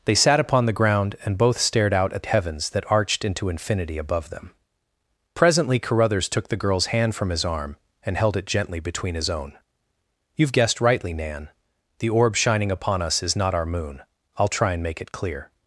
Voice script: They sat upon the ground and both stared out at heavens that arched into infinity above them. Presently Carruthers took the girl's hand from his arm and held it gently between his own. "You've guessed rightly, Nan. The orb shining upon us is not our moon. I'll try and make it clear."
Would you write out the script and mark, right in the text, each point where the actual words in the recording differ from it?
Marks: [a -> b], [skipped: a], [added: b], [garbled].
They sat upon the ground and both stared out at heavens that arched into infinity above them. Presently Carruthers took the girl's hand from his arm and held it gently between his own. "You've guessed rightly, Nan. The orb shining upon us is not our moon. I'll try and make it clear."